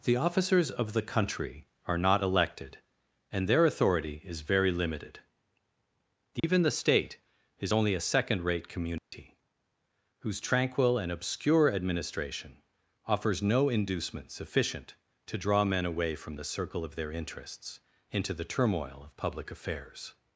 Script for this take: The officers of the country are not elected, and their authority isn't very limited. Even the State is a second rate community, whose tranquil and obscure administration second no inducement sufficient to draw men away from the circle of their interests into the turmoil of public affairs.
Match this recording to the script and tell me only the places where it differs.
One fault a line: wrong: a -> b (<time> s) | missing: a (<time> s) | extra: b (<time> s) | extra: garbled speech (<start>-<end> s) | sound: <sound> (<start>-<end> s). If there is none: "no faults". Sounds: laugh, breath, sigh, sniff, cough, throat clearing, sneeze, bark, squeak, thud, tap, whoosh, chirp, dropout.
wrong: isn't -> is (4.2 s)
sound: dropout (6.4-6.4 s)
extra: only (7.7 s)
sound: dropout (9.0-9.1 s)
wrong: second -> offers (13.1 s)